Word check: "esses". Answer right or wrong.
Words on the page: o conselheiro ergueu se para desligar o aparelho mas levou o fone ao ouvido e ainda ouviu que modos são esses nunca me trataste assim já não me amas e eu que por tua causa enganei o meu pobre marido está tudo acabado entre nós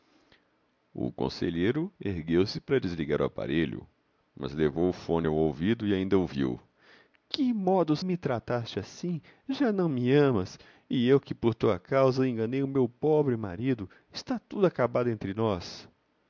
wrong